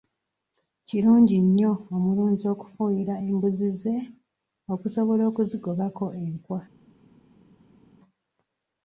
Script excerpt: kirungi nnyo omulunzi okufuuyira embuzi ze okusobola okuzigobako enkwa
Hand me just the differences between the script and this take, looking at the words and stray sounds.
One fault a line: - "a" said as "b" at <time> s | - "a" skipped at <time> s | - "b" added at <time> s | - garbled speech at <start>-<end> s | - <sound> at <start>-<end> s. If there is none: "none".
none